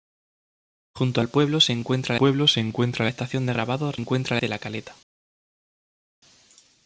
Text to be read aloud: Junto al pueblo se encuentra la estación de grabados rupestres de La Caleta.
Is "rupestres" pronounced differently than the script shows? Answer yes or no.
yes